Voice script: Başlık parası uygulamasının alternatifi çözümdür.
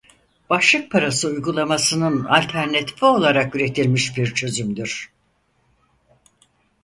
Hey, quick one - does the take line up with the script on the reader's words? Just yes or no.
no